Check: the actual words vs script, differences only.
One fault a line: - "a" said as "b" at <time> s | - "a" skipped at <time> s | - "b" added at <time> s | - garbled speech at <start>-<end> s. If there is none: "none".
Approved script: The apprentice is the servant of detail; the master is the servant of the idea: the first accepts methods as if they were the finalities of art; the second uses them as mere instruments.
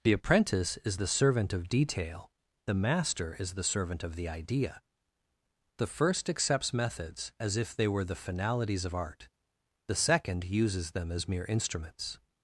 none